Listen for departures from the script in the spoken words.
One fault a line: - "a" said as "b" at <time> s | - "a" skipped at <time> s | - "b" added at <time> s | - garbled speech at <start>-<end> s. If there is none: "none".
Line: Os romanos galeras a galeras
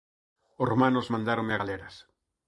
- "galeras" said as "mandáronme" at 1.1 s